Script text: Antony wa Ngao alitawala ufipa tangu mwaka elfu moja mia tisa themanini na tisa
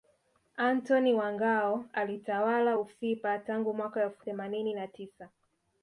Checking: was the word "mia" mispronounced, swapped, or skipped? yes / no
yes